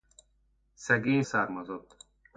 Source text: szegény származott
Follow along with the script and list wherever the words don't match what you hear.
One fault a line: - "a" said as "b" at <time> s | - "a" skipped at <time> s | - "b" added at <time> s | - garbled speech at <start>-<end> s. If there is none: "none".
none